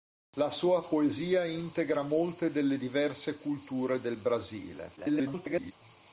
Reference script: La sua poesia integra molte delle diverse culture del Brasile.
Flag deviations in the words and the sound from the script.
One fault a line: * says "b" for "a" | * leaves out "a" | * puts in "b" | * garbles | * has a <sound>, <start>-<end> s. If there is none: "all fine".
* garbles